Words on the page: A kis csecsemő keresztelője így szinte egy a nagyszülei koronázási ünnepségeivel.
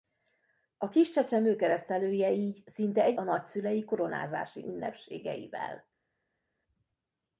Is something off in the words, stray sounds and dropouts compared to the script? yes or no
no